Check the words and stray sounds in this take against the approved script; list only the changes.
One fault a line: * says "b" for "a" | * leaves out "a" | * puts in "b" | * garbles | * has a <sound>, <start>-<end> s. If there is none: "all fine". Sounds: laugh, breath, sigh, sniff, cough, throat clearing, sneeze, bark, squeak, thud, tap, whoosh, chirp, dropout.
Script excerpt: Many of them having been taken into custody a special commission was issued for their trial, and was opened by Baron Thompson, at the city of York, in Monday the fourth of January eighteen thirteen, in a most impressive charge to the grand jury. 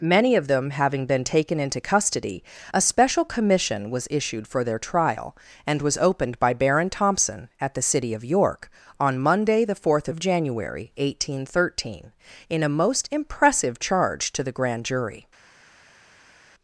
* says "on" for "in"